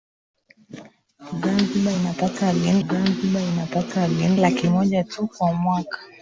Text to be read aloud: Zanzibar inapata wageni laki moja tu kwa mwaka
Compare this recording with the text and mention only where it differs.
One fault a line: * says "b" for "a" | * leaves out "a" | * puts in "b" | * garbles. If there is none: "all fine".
* puts in "zanzibar inapata wageni"